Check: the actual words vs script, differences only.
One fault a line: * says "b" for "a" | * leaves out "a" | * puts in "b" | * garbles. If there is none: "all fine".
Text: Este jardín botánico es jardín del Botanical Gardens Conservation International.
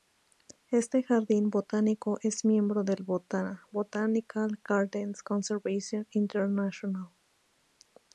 * says "miembro" for "jardín"